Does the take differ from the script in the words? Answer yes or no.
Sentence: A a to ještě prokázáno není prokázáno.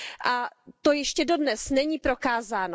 yes